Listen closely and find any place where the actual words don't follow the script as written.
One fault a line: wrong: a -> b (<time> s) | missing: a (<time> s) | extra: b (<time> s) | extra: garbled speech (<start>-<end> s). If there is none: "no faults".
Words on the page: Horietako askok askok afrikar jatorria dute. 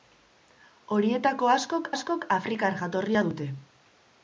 no faults